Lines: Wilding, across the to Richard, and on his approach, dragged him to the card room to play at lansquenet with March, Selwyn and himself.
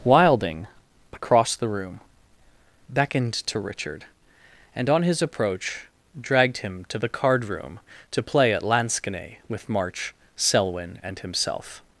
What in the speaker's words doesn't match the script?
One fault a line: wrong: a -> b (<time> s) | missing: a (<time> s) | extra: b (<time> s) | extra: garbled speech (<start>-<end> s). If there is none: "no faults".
extra: room beckoned (1.7 s)